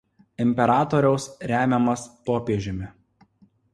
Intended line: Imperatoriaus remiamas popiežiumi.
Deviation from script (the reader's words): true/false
false